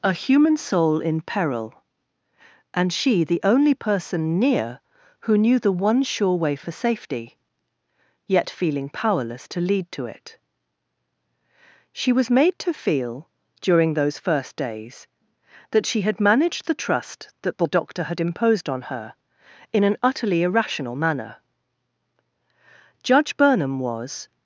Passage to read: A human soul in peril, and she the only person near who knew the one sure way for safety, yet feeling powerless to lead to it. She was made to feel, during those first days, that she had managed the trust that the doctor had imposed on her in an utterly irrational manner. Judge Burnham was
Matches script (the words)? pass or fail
pass